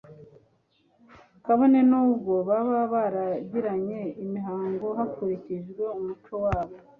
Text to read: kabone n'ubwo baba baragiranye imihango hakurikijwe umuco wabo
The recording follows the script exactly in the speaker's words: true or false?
true